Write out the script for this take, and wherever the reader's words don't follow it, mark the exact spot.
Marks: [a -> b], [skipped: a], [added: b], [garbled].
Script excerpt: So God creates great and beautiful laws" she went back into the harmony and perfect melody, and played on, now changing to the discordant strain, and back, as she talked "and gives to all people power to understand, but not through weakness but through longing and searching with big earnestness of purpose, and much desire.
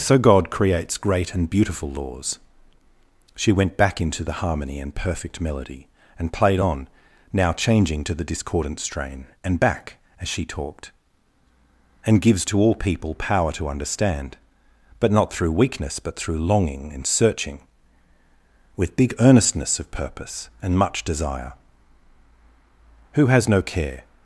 So God creates great and beautiful laws" she went back into the harmony and perfect melody, and played on, now changing to the discordant strain, and back, as she talked "and gives to all people power to understand, but not through weakness but through longing and searching with big earnestness of purpose, and much desire. [added: Who has no care]